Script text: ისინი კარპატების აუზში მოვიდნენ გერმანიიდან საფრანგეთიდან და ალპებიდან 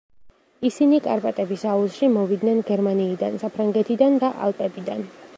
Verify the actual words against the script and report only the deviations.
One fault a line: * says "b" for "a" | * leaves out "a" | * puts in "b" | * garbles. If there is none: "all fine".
all fine